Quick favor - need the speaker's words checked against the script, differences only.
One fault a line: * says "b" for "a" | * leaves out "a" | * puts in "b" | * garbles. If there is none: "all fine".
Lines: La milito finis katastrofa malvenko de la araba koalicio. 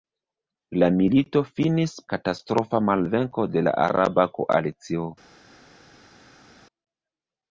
all fine